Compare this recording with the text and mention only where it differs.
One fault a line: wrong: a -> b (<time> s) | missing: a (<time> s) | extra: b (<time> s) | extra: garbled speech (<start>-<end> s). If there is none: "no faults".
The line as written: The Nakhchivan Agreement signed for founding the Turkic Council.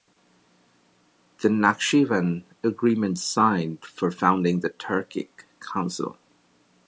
no faults